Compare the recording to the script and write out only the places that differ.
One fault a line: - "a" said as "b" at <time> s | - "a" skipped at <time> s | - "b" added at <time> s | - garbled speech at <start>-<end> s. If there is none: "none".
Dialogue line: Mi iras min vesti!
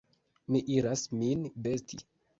none